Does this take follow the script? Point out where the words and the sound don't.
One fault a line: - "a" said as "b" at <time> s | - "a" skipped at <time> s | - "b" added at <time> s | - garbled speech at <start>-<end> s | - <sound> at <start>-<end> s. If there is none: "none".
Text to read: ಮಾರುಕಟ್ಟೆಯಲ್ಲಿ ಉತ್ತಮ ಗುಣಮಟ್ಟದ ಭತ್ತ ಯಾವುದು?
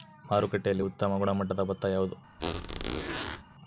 - squeak at 2.4-3.4 s